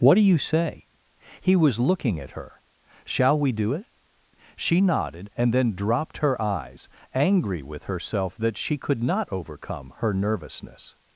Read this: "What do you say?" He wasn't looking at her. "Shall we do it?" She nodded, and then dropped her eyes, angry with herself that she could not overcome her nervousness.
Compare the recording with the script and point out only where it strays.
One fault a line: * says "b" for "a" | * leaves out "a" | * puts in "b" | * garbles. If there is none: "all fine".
* says "was" for "wasn't"